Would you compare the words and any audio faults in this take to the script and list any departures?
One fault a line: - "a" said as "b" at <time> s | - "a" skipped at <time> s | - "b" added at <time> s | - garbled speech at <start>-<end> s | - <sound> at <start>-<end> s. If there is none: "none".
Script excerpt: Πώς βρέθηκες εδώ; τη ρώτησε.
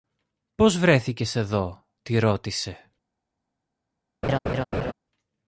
- laugh at 4.2-4.9 s